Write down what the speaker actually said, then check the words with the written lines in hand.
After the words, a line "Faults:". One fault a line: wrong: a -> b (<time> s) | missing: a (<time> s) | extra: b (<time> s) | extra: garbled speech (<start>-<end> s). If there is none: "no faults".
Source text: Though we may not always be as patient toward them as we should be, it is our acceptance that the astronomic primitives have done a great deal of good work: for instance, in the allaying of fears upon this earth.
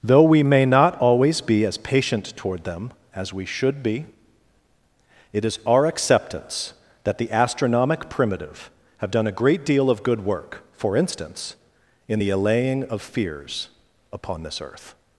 Though we may not always be as patient toward them as we should be, it is our acceptance that the astronomic primitive have done a great deal of good work: for instance, in the allaying of fears upon this earth.
Faults:
wrong: primitives -> primitive (8.1 s)